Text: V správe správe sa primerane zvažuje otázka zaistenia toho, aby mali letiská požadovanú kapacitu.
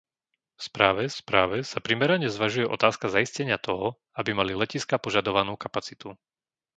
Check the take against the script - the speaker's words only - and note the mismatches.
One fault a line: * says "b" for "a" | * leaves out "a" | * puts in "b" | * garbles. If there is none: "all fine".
all fine